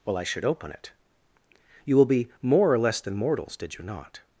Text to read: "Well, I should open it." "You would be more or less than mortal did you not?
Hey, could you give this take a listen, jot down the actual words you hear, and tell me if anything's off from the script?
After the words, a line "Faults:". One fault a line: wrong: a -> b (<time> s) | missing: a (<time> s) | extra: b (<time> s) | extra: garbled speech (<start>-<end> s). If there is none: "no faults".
"Well, I should open it." "You will be more or less than mortals did you not?
Faults:
wrong: would -> will (1.9 s)
wrong: mortal -> mortals (3.1 s)